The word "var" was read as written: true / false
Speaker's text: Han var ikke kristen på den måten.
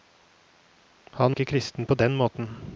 false